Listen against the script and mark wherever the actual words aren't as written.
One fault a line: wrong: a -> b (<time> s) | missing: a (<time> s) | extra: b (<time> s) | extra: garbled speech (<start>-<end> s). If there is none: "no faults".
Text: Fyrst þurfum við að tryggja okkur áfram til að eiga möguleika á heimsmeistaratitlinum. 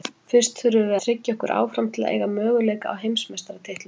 missing: að (1.0 s)